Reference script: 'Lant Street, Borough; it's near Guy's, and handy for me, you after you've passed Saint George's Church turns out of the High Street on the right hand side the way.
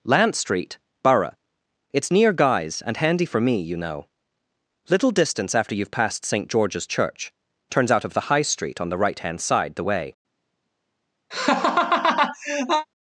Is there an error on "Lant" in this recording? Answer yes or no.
no